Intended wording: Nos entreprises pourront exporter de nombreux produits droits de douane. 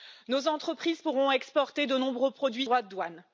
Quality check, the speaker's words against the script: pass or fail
pass